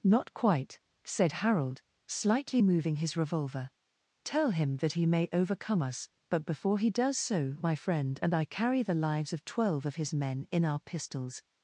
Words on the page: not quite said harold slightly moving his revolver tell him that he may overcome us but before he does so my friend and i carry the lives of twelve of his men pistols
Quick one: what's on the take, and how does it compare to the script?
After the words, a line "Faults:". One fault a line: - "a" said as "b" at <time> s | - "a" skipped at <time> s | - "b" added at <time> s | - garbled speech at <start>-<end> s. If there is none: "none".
not quite said harold slightly moving his revolver tell him that he may overcome us but before he does so my friend and i carry the lives of twelve of his men in our pistols
Faults:
- "in our" added at 10.5 s